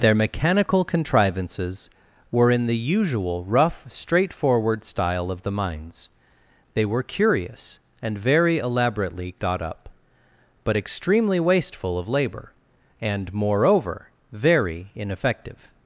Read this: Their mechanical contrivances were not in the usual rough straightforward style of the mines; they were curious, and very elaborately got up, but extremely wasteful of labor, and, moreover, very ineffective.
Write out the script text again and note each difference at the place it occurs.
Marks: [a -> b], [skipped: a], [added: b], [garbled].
Their mechanical contrivances were [skipped: not] in the usual rough straightforward style of the mines; they were curious, and very elaborately got up, but extremely wasteful of labor, and, moreover, very ineffective.